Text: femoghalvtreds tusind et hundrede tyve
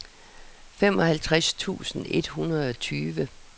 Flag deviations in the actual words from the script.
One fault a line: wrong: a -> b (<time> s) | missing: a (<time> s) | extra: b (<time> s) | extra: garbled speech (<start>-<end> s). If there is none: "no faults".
extra: og (2.7 s)